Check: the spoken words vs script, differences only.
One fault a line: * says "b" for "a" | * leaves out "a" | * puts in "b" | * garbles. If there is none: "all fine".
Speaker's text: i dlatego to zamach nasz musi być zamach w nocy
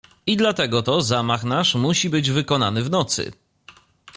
* says "wykonany" for "zamach"